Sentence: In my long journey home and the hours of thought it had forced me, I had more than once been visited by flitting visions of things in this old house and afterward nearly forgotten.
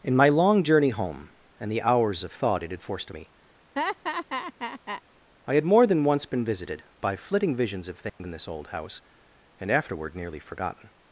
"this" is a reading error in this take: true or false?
false